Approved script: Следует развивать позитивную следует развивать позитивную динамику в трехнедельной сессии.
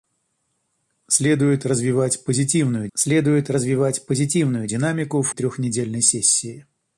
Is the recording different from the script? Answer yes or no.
no